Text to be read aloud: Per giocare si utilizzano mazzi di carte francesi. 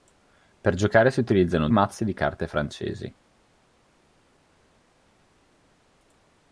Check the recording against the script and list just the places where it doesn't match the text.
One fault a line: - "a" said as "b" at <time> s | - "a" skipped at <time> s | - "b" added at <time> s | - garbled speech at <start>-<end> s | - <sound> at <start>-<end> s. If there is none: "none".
none